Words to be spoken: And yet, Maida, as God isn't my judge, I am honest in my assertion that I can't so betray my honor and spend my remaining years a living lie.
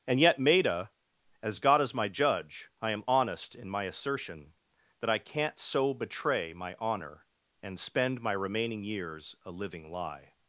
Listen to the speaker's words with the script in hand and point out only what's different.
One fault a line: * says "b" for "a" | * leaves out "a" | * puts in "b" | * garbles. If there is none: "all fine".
* says "is" for "isn't"